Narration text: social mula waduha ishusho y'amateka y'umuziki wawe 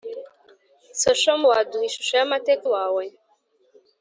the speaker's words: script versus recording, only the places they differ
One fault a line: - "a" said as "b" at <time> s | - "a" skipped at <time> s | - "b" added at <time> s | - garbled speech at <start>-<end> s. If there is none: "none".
- "mula" skipped at 1.4 s
- "y'umuziki" skipped at 2.7 s